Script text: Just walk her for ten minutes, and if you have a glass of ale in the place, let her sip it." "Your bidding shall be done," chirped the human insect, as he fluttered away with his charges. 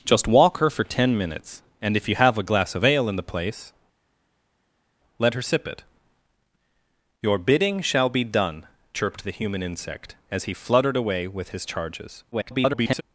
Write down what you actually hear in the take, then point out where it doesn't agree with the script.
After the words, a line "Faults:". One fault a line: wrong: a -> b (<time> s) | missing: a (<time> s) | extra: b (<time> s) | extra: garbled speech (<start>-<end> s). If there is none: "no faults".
Just walk her for ten minutes, and if you have a glass of ale in the place, let her sip it." "Your bidding shall be done," chirped the human insect, as he fluttered away with his charges. [garbled]
Faults:
extra: garbled speech (12.3-13.0 s)